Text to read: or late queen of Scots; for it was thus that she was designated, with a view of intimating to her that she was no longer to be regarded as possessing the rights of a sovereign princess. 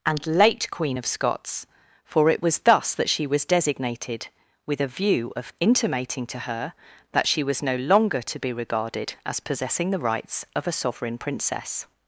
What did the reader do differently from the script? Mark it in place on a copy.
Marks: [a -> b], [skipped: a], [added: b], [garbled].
[or -> and] late queen of Scots; for it was thus that she was designated, with a view of intimating to her that she was no longer to be regarded as possessing the rights of a sovereign princess.